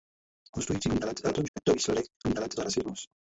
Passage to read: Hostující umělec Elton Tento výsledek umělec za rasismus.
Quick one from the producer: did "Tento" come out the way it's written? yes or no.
yes